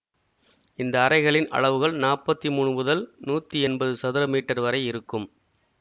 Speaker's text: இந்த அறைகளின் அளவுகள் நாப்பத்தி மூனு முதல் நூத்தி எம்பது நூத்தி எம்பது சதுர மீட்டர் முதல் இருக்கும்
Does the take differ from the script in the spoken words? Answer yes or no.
yes